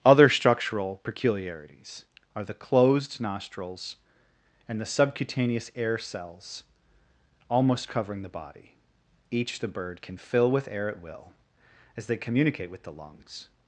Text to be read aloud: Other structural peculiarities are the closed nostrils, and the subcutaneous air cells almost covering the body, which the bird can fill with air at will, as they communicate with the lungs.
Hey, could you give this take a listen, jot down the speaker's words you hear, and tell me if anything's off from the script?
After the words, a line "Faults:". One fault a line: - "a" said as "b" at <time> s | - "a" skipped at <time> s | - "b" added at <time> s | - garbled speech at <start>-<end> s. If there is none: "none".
Other structural peculiarities are the closed nostrils, and the subcutaneous air cells almost covering the body, each the bird can fill with air at will, as they communicate with the lungs.
Faults:
- "which" said as "each" at 9.3 s